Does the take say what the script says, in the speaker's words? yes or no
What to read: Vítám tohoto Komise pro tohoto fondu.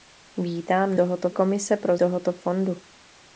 yes